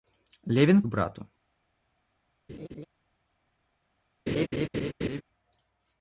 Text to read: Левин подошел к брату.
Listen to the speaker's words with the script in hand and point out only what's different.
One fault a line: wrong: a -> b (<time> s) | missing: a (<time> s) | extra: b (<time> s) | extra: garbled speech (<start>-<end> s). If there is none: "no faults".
missing: подошел к (0.8 s)